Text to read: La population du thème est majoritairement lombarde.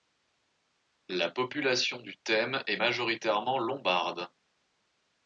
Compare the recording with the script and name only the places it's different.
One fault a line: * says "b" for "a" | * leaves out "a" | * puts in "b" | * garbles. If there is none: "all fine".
all fine